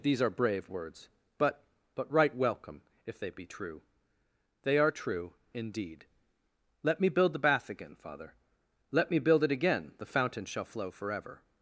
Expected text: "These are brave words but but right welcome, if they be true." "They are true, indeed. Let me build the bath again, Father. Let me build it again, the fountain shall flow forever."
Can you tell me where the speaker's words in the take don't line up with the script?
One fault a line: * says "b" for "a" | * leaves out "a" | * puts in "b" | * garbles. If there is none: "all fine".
all fine